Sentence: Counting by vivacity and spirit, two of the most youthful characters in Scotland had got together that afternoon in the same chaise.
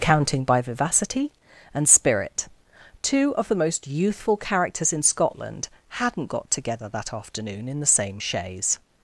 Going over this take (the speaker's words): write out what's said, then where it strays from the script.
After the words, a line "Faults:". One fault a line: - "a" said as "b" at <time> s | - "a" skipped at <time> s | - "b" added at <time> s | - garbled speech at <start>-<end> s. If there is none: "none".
Counting by vivacity and spirit, two of the most youthful characters in Scotland hadn't got together that afternoon in the same chaise.
Faults:
- "had" said as "hadn't" at 5.9 s